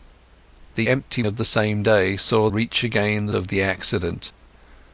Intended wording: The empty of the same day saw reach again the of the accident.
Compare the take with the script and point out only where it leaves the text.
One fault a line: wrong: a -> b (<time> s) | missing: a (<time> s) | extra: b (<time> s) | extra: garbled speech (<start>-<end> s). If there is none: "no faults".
no faults